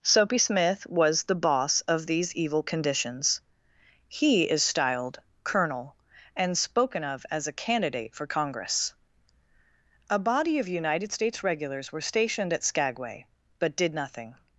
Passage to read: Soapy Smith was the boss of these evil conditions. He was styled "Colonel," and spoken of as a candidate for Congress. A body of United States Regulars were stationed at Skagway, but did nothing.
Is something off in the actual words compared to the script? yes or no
yes